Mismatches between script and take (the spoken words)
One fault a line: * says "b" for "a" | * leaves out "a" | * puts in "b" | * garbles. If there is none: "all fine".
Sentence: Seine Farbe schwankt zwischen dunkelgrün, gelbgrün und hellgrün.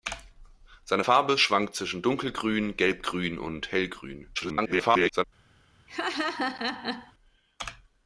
* garbles